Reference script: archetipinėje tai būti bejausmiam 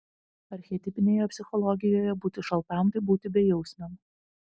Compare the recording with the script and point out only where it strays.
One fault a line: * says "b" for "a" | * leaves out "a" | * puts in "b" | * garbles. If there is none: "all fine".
* puts in "psichologijoje būti šaltam"